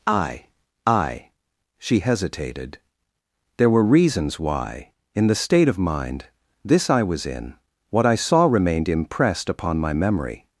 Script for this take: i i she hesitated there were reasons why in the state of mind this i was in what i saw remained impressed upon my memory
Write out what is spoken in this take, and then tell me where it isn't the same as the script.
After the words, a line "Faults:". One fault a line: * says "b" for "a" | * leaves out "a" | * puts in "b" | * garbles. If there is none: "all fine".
i i she hesitated there were reasons why in the state of mind this i was in what i saw remained impressed upon my memory
Faults:
all fine